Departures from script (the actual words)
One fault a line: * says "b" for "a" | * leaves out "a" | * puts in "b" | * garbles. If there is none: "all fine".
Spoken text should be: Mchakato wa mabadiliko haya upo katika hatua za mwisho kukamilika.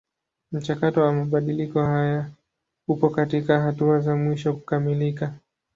all fine